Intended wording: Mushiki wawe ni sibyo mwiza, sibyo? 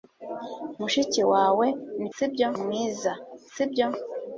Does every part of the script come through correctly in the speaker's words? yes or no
yes